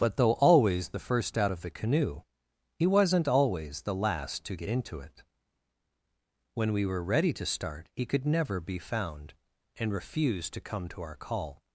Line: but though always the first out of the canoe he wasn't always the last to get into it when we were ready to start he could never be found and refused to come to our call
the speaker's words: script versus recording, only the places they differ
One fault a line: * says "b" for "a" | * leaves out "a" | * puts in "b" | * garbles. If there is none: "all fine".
all fine